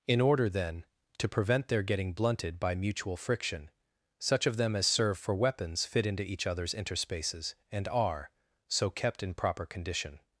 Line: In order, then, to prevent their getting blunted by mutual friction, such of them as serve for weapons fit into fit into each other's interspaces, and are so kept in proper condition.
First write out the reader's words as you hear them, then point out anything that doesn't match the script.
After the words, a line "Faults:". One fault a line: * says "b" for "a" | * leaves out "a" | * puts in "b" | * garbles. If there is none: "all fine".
In order, then, to prevent their getting blunted by mutual friction, such of them as serve for weapons fit into each other's interspaces, and are so kept in proper condition.
Faults:
* leaves out "fit into"